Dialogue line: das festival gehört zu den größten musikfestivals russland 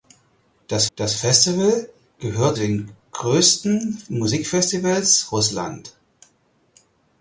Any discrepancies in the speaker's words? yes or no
yes